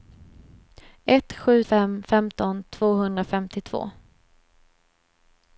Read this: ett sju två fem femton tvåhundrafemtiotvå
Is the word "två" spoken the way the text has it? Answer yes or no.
no